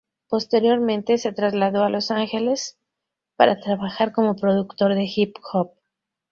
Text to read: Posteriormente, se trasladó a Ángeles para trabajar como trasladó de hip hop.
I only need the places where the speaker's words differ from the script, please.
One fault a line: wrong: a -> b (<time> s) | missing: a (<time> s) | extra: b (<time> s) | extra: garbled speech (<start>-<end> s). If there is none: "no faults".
extra: Los (1.9 s)
wrong: trasladó -> productor (4.3 s)